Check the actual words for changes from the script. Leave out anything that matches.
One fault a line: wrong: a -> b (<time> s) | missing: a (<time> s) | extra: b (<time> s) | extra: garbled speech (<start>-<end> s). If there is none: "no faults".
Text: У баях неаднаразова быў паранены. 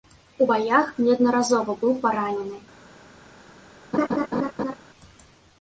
no faults